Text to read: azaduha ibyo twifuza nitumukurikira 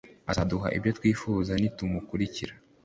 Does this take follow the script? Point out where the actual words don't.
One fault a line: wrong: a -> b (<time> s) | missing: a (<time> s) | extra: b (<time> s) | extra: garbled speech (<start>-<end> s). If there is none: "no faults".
no faults